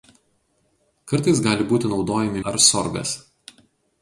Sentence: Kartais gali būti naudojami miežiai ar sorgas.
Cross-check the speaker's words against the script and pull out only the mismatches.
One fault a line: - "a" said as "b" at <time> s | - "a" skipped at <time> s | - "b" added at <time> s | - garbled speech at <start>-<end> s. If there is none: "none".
- "miežiai" skipped at 2.4 s